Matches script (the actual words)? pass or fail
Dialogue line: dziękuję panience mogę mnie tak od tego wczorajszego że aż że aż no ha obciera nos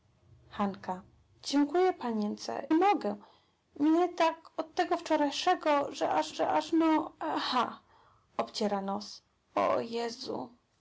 pass